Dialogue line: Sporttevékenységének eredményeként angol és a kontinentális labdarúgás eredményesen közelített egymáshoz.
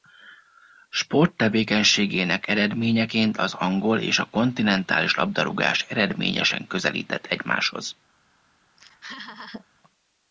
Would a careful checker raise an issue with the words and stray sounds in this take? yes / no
yes